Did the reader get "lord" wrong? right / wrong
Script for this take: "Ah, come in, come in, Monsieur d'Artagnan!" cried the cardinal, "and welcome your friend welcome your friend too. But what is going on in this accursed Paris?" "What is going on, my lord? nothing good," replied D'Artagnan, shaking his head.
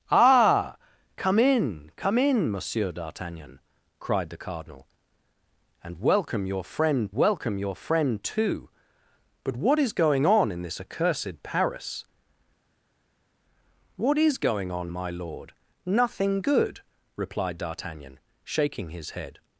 right